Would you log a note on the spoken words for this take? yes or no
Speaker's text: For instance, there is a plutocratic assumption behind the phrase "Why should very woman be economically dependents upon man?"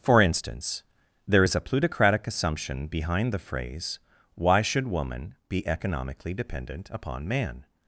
yes